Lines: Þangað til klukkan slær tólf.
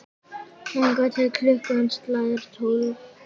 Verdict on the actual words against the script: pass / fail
pass